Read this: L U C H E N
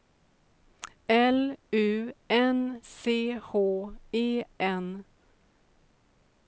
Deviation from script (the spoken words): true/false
true